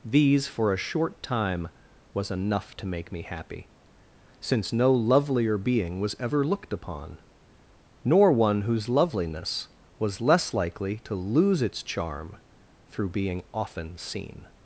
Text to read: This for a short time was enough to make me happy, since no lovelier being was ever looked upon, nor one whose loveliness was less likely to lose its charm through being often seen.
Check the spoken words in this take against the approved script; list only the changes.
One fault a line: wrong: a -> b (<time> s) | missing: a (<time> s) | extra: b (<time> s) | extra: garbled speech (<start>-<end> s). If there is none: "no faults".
wrong: This -> These (0.0 s)